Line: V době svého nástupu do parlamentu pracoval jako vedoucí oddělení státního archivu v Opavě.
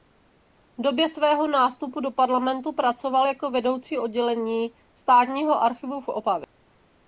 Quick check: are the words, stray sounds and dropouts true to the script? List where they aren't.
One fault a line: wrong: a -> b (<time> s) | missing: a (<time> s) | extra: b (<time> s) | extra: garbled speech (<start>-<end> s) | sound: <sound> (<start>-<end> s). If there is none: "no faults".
no faults